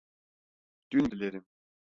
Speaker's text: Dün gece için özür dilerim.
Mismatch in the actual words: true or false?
true